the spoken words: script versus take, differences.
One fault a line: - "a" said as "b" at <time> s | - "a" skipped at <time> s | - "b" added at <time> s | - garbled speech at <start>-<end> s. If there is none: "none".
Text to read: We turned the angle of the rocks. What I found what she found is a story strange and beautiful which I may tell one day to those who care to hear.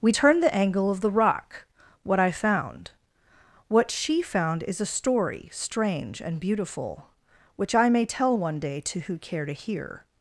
- "rocks" said as "rock" at 1.1 s
- "those" skipped at 9.0 s